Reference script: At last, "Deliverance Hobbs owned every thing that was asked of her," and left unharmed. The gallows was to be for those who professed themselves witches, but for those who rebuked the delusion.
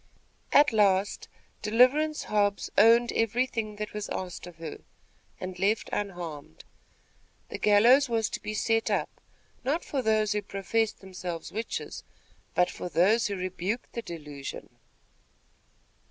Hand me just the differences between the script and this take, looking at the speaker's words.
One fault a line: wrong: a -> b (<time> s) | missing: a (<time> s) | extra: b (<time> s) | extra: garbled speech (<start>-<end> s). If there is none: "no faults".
extra: set up not (8.6 s)